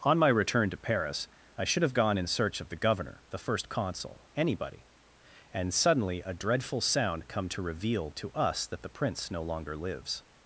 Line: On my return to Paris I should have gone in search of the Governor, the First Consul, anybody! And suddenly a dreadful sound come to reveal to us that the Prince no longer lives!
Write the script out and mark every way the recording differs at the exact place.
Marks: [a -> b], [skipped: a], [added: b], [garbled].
On my return to Paris I should have gone in search of the Governor, the First Consul, anybody! And suddenly a dreadful sound come to reveal to us that the Prince no longer lives!